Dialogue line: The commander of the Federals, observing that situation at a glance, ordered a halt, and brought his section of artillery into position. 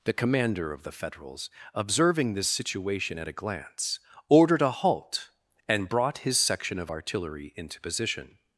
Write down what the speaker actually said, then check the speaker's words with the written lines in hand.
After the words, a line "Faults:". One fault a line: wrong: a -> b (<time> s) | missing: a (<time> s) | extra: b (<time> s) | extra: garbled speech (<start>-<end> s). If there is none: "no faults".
The commander of the Federals, observing this situation at a glance, ordered a halt, and brought his section of artillery into position.
Faults:
wrong: that -> this (2.3 s)